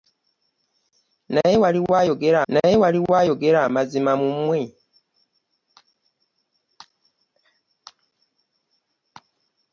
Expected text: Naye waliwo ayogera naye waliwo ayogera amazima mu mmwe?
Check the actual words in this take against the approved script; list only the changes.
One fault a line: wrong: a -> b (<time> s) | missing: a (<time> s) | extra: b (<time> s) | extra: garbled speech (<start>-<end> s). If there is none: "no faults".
no faults